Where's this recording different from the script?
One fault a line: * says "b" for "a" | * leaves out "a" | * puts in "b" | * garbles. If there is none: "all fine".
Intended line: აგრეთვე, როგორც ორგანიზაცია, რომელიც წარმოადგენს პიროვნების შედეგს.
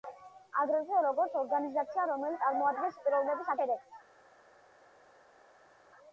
all fine